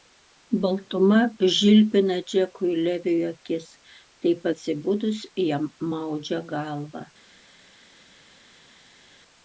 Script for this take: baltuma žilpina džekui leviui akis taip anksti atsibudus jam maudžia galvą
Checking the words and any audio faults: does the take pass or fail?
fail